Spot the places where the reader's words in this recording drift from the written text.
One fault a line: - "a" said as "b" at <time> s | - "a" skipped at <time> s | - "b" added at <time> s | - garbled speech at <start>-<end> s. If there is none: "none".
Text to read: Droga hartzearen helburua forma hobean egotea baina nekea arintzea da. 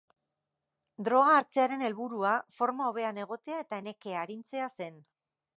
- "baina" said as "eta" at 3.7 s
- "da" said as "zen" at 4.8 s